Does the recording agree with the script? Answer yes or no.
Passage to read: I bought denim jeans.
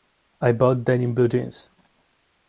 no